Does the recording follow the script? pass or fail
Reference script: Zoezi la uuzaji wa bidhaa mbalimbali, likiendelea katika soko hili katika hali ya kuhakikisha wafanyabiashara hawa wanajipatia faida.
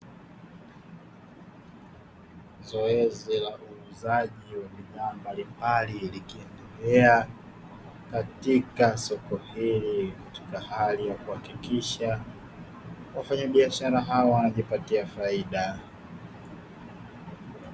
pass